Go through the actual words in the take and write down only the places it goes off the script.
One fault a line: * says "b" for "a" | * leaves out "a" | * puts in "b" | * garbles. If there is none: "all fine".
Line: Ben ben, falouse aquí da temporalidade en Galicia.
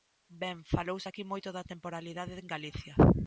* leaves out "ben"
* puts in "moito"